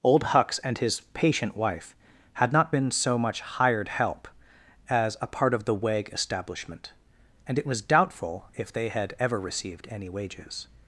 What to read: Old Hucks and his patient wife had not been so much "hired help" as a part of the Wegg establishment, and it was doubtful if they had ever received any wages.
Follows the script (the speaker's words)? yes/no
yes